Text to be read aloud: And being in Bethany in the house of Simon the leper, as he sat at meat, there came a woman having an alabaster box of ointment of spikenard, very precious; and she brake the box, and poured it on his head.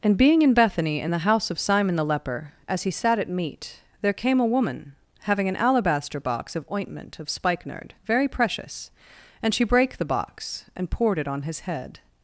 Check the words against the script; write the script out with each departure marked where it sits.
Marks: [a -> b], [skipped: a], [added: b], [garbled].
And being in Bethany in the house of Simon the leper, as he sat at meat, there came a woman having an alabaster box of ointment of spikenard, very precious; and she brake the box, and poured it on his head.